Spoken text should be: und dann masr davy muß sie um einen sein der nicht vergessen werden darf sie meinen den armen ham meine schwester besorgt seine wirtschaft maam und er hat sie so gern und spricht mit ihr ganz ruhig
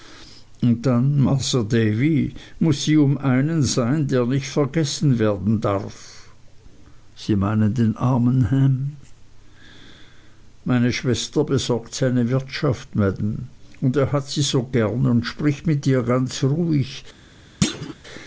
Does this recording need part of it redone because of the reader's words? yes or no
no